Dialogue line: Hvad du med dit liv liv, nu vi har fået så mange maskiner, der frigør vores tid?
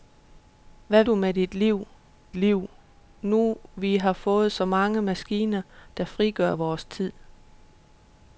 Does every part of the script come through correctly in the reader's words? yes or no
yes